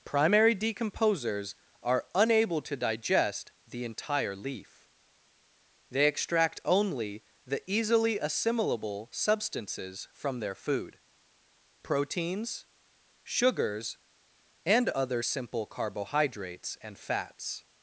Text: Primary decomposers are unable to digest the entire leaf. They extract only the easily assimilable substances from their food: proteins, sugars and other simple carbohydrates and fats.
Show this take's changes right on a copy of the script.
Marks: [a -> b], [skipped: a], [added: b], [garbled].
Primary decomposers are unable to digest the entire leaf. They extract only the easily assimilable substances from their food: proteins, sugars and other simple carbohydrates and fats.